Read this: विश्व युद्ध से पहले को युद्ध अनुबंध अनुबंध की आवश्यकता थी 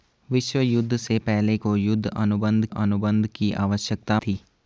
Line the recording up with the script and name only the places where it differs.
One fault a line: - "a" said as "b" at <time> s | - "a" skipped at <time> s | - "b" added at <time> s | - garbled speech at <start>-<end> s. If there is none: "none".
none